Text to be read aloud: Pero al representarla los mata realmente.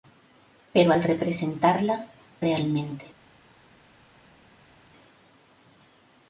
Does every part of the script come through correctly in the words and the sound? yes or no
no